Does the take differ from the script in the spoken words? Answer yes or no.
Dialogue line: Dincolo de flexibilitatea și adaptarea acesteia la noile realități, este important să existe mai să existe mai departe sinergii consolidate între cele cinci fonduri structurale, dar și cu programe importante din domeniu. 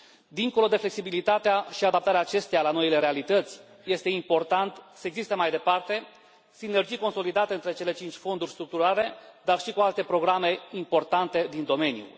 yes